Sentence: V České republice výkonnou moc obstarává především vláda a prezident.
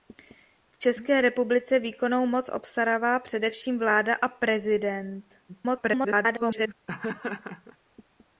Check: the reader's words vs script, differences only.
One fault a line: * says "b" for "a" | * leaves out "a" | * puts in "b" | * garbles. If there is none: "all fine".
* garbles